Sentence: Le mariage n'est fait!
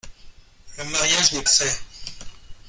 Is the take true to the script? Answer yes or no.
yes